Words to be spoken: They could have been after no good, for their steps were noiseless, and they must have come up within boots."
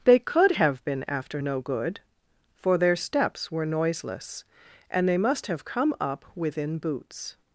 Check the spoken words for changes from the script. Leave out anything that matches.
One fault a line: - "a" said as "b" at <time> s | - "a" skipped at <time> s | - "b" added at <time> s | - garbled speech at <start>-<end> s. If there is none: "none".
none